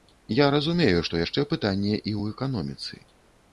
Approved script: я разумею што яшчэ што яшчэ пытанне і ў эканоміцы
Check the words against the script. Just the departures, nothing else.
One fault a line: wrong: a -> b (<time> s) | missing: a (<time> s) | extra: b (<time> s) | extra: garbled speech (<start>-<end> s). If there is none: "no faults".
missing: што яшчэ (1.5 s)